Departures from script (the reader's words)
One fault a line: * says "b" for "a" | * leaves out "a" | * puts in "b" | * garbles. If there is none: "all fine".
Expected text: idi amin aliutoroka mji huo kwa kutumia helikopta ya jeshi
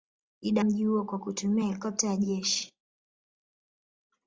* leaves out "amin aliutoroka"